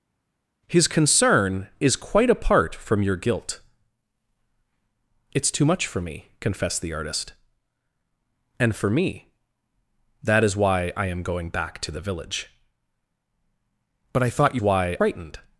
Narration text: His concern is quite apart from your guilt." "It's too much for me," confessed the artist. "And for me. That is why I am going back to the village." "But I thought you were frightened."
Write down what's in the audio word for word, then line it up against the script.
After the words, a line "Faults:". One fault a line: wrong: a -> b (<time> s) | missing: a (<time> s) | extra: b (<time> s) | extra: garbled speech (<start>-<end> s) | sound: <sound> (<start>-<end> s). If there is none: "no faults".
His concern is quite apart from your guilt." "It's too much for me," confessed the artist. "And for me. That is why I am going back to the village." "But I thought you why frightened."
Faults:
wrong: were -> why (14.6 s)